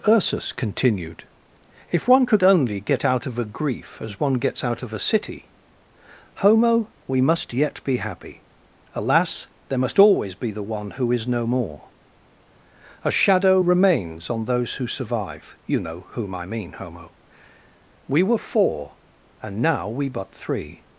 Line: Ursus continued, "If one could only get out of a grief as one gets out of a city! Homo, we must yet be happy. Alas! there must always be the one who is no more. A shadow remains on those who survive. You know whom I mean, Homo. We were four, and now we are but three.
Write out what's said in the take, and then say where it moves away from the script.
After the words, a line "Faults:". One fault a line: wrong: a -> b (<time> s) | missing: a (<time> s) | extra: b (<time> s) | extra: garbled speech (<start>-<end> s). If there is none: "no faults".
Ursus continued, "If one could only get out of a grief as one gets out of a city! Homo, we must yet be happy. Alas! there must always be the one who is no more. A shadow remains on those who survive. You know whom I mean, Homo. We were four, and now we but three.
Faults:
missing: are (20.1 s)